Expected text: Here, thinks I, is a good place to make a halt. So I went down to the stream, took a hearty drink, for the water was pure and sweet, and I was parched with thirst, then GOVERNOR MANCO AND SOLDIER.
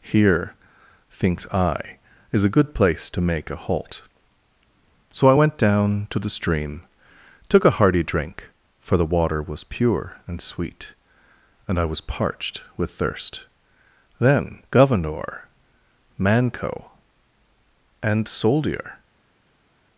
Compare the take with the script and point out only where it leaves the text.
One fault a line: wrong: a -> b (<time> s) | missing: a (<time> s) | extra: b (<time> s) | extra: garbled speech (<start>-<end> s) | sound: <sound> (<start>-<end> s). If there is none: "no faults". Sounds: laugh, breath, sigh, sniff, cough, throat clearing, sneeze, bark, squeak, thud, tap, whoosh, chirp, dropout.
no faults